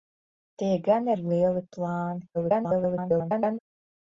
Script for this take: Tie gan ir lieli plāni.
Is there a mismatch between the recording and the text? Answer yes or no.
yes